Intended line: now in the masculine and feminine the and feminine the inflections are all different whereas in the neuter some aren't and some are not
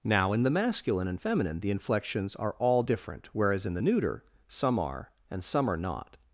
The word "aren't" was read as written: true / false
false